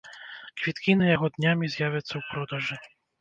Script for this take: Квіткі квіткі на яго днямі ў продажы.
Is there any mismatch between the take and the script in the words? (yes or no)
yes